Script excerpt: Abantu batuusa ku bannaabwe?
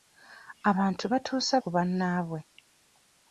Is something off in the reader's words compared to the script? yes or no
no